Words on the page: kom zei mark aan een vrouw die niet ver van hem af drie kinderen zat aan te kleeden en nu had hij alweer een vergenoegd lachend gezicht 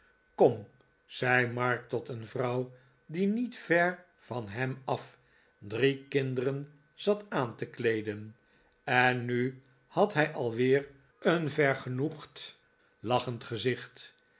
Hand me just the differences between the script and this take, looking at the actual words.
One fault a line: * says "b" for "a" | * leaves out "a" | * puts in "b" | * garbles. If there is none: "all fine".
* says "tot" for "aan"